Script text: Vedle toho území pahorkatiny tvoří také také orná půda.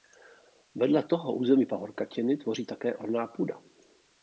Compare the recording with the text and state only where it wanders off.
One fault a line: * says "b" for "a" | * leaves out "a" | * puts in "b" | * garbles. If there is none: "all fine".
* leaves out "také"